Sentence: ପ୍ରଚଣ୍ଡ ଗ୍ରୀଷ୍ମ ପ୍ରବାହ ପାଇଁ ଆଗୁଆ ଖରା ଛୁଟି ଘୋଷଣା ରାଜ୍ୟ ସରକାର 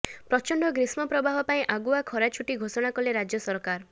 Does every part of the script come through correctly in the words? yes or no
no